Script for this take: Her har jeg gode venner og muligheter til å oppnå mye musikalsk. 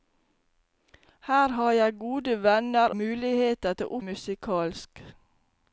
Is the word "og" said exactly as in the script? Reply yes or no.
no